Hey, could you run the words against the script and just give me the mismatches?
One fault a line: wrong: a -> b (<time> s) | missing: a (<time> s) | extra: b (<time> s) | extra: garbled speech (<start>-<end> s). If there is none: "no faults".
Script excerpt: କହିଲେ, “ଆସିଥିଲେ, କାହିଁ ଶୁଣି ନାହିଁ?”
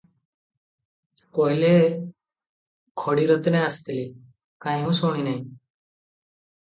extra: ଖଡ଼ିରତ୍ନେ (3.0 s)
extra: ମୁଁ (4.8 s)